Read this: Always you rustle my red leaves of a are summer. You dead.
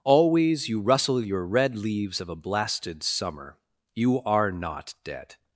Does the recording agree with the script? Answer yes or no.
no